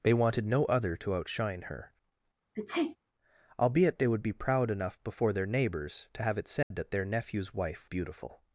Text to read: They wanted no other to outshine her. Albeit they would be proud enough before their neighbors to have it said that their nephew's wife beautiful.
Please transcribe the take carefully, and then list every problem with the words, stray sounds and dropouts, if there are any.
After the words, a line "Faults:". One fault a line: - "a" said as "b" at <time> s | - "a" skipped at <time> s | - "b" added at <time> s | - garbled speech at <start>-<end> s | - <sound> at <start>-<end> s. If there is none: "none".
They wanted no other to outshine her. Albeit they would be proud enough before their neighbors to have it said that their nephew's wife beautiful.
Faults:
- sneeze at 2.6-3.0 s
- dropout at 6.6-6.7 s